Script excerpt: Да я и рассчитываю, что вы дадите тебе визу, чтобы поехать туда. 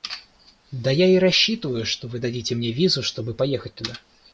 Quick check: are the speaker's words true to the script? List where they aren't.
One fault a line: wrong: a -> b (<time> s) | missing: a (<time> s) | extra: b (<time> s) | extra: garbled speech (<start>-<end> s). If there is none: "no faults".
wrong: тебе -> мне (2.5 s)